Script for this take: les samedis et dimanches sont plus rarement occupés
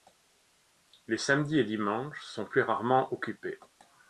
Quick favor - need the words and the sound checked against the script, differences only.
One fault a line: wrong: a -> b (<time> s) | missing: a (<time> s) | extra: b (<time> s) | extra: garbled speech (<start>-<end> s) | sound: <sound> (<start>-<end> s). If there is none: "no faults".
no faults